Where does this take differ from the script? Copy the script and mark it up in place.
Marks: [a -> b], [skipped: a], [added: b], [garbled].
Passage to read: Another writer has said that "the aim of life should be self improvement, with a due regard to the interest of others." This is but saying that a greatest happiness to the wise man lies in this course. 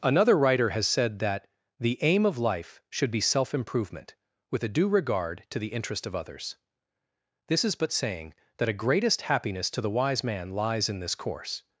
Another writer has said that "the aim of life should be self improvement, with a due regard to the interest of others." This is but saying that a greatest happiness to the wise man lies in this course.